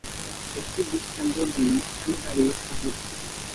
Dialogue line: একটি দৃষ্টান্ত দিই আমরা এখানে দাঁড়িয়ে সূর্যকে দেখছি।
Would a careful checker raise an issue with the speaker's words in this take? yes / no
yes